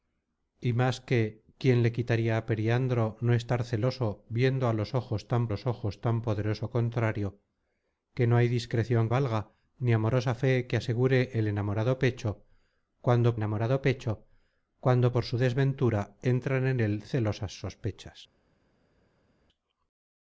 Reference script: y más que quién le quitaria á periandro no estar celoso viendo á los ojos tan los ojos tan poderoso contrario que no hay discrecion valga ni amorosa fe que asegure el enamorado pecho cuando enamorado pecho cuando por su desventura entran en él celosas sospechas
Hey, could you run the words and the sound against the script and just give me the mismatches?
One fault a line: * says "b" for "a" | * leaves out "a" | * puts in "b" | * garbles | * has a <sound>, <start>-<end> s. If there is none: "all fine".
all fine